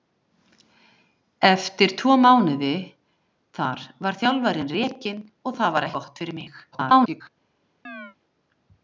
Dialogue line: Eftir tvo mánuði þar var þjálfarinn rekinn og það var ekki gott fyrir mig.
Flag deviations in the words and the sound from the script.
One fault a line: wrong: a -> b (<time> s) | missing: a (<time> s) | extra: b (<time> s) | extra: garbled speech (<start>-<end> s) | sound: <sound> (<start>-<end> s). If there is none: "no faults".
missing: ekki (5.9 s)
extra: garbled speech (6.7-7.3 s)
sound: chirp (7.8-8.2 s)